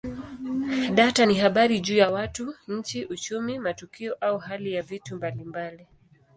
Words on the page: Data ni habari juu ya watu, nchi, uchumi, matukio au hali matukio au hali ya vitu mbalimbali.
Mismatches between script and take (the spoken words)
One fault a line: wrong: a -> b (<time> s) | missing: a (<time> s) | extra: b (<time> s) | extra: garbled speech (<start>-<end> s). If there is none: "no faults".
missing: matukio au hali (4.7 s)